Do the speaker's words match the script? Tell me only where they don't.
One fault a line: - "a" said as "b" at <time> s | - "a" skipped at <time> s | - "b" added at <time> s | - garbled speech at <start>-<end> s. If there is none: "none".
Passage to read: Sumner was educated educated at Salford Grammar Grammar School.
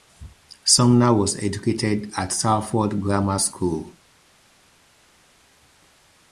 - "educated" skipped at 2.1 s
- "Grammar" skipped at 3.4 s